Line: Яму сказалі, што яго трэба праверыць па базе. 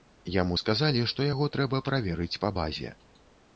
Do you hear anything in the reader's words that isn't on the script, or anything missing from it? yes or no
no